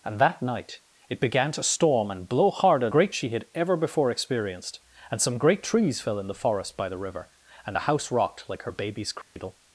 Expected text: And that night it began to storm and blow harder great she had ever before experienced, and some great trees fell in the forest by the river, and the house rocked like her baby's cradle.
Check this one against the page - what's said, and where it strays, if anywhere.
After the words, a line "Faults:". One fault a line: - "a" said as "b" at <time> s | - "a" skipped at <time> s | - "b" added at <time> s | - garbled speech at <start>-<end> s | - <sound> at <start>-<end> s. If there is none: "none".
And that night it began to storm and blow harder great she had ever before experienced, and some great trees fell in the forest by the river, and the house rocked like her baby's cradle.
Faults:
- dropout at 9.2-9.4 s